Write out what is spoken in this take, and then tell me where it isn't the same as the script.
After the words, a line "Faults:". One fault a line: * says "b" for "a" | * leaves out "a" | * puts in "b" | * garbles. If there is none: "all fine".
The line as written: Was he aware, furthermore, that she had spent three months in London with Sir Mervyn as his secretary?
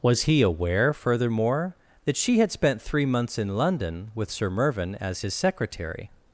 Was he aware, furthermore, that she had spent three months in London with Sir Mervyn as his secretary?
Faults:
all fine